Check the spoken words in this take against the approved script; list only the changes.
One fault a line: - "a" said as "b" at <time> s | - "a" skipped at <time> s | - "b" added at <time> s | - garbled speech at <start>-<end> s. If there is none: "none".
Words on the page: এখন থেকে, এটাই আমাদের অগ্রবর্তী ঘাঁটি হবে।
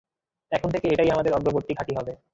none